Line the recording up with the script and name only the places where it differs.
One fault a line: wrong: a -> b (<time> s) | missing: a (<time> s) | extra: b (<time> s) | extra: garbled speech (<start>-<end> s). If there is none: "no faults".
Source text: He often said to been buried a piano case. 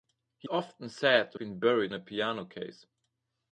no faults